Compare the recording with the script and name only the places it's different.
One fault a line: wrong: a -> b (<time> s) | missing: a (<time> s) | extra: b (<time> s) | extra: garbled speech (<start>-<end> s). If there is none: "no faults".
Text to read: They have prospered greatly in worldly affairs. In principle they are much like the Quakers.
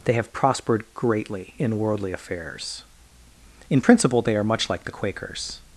no faults